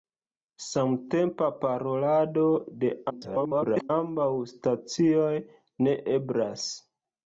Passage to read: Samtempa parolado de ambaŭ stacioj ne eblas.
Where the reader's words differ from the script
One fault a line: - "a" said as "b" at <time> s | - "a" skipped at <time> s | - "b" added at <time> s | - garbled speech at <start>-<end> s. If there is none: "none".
- garbled speech at 3.1-3.9 s